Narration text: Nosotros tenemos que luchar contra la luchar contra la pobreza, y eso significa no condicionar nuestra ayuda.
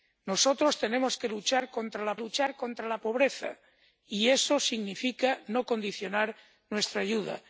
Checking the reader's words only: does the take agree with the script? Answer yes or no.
yes